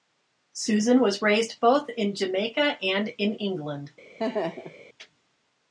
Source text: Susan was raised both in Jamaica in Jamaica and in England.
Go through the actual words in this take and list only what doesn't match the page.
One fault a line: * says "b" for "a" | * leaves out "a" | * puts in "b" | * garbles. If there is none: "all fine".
* leaves out "in Jamaica"